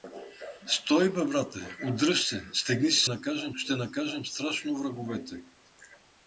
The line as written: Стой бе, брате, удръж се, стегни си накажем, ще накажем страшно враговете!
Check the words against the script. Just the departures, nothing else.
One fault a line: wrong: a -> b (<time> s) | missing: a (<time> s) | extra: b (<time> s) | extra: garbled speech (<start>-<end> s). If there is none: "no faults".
no faults